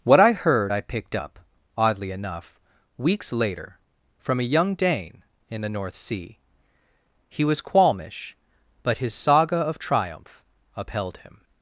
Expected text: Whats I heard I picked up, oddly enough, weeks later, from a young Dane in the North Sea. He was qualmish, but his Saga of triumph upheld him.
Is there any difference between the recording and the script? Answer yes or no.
yes